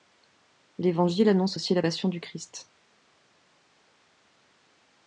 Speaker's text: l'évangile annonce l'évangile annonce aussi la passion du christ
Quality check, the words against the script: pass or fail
fail